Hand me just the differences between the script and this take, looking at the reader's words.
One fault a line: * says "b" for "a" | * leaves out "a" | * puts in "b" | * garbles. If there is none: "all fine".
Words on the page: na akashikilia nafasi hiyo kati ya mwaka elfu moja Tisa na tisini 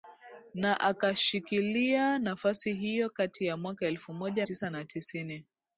all fine